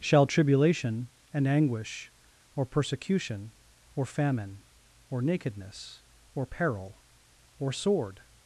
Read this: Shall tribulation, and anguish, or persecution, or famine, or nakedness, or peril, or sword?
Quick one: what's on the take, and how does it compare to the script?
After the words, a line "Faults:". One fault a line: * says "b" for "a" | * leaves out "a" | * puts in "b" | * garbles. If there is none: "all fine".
Shall tribulation, and anguish, or persecution, or famine, or nakedness, or peril, or sword?
Faults:
all fine